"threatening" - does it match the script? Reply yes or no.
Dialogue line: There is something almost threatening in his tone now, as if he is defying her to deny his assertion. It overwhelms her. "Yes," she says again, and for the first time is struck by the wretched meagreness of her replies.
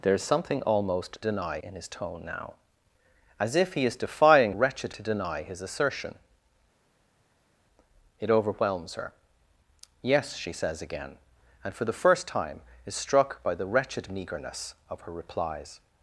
no